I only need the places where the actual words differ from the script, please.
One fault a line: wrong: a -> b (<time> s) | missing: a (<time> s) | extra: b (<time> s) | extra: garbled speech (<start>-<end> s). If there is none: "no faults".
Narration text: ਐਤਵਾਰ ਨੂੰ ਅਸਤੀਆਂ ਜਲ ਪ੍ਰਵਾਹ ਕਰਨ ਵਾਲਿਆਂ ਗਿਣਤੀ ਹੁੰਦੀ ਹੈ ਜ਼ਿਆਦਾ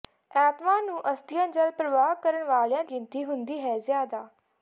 no faults